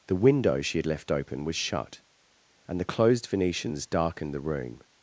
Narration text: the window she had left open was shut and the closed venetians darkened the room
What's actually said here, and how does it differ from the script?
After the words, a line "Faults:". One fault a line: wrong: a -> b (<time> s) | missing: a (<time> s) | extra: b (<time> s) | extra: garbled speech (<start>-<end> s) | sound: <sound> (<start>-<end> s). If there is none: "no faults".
the window she had left open was shut and the closed venetians darkened the room
Faults:
no faults